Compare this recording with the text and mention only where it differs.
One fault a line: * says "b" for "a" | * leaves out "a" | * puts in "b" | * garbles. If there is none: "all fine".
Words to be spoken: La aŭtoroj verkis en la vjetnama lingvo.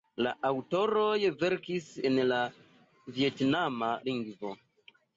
all fine